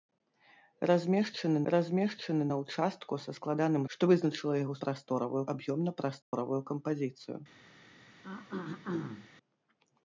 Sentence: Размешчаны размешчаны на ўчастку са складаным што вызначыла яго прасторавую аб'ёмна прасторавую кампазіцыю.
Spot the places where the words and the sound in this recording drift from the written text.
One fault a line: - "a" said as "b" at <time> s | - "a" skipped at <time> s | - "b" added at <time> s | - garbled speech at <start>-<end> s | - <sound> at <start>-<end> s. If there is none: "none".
- dropout at 6.2-6.3 s
- throat clearing at 8.2-9.3 s